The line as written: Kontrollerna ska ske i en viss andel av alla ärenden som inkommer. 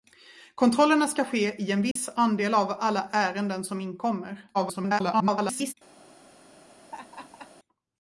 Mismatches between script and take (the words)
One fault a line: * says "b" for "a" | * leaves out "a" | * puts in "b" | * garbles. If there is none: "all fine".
* garbles